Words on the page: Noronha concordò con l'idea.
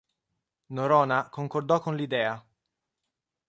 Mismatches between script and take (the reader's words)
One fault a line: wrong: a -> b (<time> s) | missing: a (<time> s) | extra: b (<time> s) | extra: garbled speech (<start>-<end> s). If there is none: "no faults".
no faults